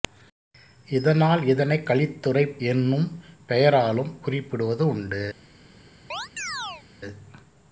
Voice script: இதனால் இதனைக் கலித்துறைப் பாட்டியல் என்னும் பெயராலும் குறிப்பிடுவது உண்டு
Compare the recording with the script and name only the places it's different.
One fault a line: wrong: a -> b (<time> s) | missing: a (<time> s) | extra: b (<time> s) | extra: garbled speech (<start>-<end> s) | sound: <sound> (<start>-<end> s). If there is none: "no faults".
missing: பாட்டியல் (2.6 s)
sound: chirp (6.1-6.8 s)